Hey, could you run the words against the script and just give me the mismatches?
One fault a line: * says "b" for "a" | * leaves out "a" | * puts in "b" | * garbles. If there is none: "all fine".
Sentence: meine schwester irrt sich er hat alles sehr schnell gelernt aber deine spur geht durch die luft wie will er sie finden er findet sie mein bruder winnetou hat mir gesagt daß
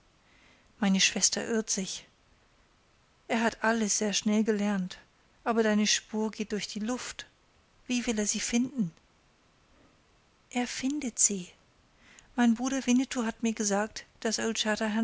all fine